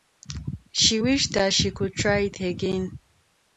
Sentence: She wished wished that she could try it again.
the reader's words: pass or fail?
fail